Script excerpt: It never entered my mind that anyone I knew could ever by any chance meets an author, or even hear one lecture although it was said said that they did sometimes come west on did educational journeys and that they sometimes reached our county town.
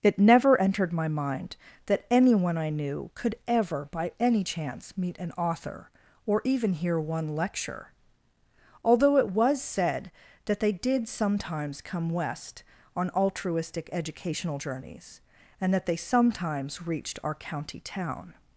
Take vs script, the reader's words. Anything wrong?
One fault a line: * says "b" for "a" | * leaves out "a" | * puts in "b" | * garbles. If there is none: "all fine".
* says "meet" for "meets"
* leaves out "said"
* says "altruistic" for "did"